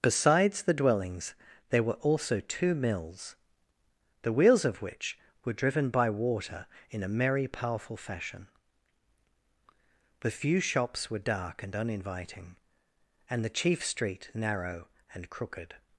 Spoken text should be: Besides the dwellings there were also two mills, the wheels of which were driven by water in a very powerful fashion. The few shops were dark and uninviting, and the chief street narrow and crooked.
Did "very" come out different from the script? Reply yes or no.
yes